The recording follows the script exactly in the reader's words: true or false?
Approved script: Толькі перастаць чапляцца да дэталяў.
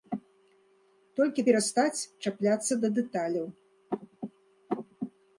true